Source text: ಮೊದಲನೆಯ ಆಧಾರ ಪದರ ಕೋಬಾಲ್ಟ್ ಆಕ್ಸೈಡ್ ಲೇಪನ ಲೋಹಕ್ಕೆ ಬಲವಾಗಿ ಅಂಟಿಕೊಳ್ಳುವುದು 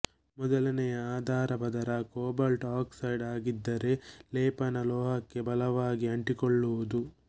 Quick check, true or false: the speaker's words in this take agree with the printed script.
false